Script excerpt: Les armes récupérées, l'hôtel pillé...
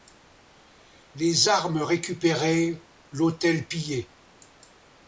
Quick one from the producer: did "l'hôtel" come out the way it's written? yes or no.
yes